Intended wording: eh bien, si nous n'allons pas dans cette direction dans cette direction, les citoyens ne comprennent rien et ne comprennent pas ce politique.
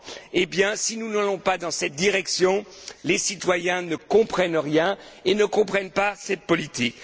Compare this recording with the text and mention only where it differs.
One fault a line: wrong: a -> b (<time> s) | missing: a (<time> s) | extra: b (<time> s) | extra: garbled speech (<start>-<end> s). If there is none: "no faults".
missing: dans cette direction (2.6 s)
wrong: ce -> cette (6.2 s)